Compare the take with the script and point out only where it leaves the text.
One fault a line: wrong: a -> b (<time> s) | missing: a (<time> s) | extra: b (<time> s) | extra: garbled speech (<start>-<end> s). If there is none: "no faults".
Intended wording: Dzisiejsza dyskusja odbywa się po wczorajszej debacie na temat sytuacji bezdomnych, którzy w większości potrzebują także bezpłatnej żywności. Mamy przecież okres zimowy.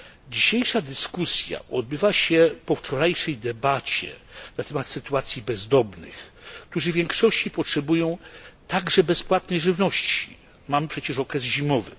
no faults